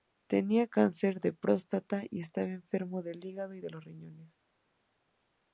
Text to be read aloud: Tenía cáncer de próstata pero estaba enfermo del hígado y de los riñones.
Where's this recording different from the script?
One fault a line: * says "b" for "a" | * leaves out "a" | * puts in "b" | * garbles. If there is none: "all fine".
* says "y" for "pero"